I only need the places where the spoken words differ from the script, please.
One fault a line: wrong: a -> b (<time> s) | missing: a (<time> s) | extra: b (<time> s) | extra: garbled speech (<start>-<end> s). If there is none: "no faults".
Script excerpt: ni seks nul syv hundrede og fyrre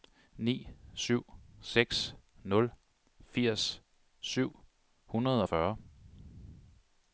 extra: syv (0.9 s)
extra: firs (3.2 s)